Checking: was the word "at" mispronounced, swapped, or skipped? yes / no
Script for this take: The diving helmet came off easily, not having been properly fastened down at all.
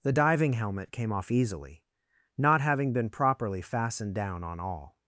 yes